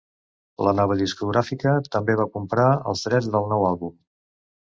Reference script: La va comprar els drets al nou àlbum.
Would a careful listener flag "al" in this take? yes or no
yes